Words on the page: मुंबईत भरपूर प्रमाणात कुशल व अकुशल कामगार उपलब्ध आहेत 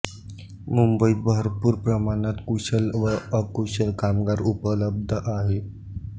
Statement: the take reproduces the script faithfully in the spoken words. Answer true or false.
true